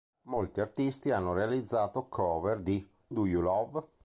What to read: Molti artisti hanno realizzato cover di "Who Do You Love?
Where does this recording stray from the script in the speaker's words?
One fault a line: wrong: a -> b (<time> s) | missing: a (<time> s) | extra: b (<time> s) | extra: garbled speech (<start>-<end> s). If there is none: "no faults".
missing: Who (2.9 s)